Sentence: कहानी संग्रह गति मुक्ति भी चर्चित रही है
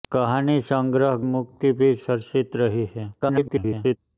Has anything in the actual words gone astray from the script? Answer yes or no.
yes